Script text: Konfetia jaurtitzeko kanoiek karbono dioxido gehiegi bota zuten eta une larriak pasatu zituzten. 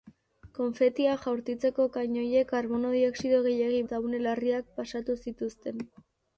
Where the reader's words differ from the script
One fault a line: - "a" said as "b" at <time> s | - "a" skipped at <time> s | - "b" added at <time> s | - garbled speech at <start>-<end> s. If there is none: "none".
- "bota zuten" skipped at 3.8 s